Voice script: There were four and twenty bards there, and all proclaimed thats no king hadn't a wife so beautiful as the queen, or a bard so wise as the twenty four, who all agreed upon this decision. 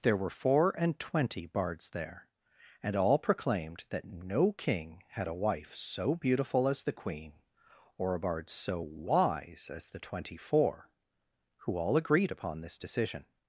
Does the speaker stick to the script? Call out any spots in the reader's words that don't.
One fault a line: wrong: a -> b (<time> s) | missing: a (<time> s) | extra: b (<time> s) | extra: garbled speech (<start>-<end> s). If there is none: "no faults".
wrong: thats -> that (3.9 s)
wrong: hadn't -> had (5.1 s)